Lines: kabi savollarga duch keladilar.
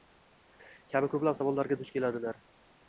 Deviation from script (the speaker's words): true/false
true